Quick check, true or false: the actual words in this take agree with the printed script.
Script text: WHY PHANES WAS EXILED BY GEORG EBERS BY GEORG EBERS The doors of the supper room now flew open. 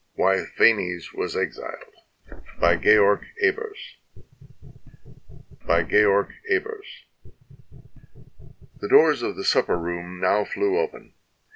true